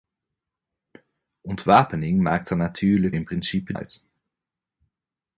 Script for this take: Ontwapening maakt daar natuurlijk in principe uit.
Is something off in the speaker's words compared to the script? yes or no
no